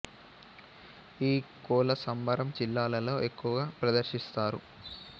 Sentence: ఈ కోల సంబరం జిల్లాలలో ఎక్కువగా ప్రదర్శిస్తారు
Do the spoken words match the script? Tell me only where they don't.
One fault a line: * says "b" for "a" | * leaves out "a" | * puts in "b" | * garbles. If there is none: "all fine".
all fine